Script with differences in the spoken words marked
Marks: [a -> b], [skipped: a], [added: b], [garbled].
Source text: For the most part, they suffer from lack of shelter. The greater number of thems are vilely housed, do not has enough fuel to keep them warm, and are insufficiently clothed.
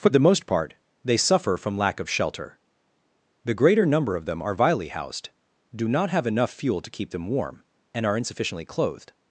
For the most part, they suffer from lack of shelter. The greater number of [thems -> them] are vilely housed, do not [has -> have] enough fuel to keep them warm, and are insufficiently clothed.